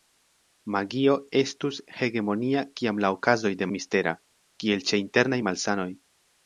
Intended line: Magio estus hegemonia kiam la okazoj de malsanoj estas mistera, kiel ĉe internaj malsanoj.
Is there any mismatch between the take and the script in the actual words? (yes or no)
yes